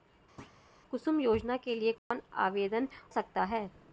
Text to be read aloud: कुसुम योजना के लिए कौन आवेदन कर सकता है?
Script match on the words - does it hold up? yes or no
no